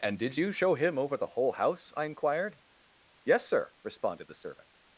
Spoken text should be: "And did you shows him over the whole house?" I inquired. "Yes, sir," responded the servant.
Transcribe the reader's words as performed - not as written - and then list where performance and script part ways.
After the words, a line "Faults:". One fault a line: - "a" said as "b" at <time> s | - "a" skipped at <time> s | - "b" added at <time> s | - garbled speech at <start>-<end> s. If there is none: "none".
"And did you show him over the whole house?" I inquired. "Yes, sir," responded the servant.
Faults:
- "shows" said as "show" at 0.5 s